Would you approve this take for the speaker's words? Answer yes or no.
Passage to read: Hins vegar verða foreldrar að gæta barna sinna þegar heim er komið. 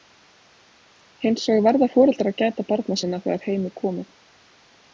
yes